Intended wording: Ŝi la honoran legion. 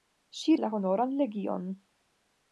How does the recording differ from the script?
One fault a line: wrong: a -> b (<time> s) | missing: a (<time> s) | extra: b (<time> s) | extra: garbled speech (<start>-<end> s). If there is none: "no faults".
no faults